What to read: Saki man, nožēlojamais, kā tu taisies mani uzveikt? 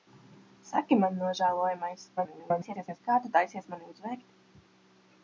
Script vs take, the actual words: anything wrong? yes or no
yes